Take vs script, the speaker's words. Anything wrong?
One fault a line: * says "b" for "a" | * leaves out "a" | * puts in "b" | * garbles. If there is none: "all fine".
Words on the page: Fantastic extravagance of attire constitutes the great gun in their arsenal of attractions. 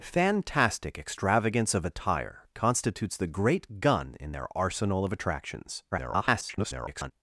* garbles